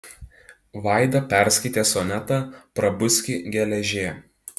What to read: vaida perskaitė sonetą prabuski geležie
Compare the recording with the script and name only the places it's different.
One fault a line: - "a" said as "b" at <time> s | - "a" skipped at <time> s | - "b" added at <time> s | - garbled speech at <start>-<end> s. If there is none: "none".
none